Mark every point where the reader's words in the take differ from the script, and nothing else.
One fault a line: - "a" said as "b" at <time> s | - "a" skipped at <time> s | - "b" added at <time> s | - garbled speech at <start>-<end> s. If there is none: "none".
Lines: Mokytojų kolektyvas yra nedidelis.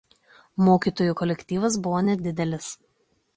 - "yra" said as "buvo" at 1.9 s